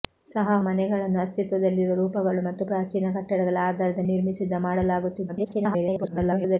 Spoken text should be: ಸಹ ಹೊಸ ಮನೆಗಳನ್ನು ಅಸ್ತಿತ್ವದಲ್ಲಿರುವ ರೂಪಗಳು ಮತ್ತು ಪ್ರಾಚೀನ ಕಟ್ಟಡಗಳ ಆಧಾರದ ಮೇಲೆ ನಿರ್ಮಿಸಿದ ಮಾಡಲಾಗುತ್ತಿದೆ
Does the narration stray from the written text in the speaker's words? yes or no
yes